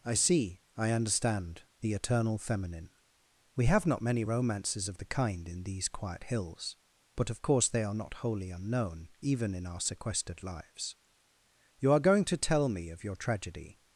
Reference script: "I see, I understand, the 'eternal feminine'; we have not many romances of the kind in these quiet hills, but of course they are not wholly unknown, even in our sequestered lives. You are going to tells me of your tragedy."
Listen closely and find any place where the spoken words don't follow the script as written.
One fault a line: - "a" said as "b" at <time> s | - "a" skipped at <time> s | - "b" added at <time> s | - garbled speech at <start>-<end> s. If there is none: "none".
- "tells" said as "tell" at 12.4 s